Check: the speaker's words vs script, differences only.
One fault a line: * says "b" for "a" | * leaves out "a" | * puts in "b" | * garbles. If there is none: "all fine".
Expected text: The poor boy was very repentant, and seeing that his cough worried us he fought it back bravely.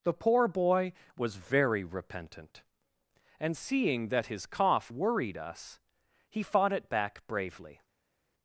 all fine